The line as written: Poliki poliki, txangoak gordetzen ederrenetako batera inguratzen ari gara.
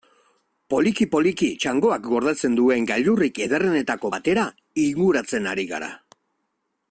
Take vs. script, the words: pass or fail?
fail